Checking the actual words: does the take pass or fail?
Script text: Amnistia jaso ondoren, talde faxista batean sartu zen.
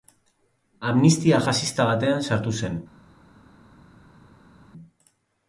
fail